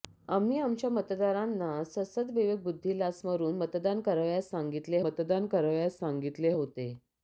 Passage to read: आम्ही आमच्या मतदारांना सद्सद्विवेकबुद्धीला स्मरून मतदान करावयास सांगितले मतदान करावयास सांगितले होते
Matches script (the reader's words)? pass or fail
pass